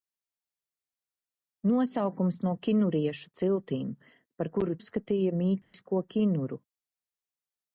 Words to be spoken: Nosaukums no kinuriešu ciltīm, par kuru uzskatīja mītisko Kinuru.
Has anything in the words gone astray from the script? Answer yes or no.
no